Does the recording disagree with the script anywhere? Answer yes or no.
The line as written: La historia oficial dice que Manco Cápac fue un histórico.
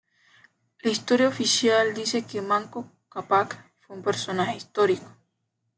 yes